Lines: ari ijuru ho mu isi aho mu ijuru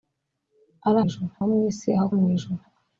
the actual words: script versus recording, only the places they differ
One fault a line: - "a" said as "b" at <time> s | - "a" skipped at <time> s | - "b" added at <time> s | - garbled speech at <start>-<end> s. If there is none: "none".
none